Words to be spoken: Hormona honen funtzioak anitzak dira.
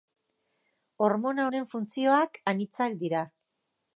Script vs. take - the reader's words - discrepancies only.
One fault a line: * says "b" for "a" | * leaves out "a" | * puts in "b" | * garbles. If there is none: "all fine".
all fine